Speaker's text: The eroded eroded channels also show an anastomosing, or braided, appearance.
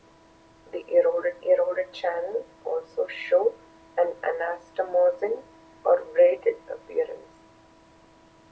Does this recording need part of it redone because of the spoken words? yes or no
no